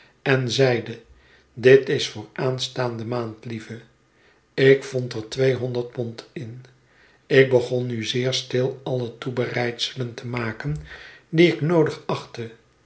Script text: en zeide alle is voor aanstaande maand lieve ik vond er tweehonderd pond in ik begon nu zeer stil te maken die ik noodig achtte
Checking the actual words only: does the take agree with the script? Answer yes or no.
no